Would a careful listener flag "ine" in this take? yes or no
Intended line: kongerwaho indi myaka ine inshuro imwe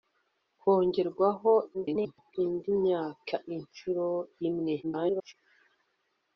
yes